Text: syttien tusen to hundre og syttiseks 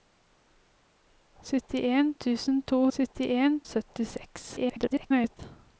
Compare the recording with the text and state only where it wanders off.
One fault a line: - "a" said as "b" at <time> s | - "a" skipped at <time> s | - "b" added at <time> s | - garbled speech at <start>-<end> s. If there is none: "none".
- "hundre" said as "syttien" at 3.0 s
- garbled speech at 4.6-5.4 s